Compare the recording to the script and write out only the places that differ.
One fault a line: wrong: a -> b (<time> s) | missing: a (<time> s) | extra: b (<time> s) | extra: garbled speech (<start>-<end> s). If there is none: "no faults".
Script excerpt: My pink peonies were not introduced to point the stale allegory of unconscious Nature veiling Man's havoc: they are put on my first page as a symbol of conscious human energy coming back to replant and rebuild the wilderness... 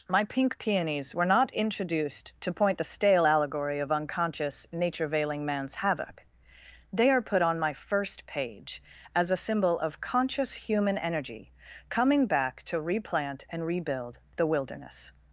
no faults